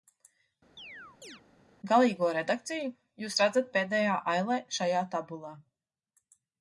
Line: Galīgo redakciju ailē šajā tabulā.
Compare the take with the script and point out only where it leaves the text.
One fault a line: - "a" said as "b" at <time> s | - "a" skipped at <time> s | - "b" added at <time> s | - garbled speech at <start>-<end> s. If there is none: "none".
- "jūs redzat pēdējā" added at 3.2 s